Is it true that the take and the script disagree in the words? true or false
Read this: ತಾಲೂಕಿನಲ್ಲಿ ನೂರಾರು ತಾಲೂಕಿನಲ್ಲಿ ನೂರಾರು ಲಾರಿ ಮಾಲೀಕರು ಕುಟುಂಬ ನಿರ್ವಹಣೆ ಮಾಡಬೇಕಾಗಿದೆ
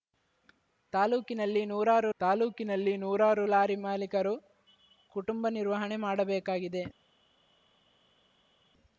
false